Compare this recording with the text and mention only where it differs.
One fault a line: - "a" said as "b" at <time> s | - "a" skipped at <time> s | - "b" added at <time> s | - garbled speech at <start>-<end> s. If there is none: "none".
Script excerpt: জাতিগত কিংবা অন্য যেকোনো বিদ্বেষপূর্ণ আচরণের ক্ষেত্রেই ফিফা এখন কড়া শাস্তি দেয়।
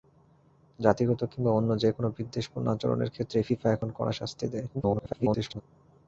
- garbled speech at 4.7-5.6 s